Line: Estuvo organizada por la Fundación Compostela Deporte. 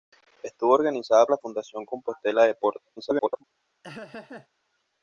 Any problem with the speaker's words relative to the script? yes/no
yes